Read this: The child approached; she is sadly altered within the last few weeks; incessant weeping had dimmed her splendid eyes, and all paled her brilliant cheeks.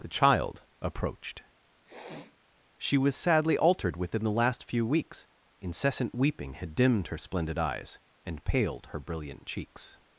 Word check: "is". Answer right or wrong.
wrong